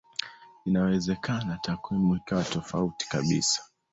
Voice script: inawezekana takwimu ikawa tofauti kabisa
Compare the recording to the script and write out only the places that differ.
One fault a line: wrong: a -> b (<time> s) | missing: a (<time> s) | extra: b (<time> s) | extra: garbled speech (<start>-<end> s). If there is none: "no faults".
no faults